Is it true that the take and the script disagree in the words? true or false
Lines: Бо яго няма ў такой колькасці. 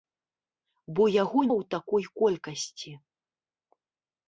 true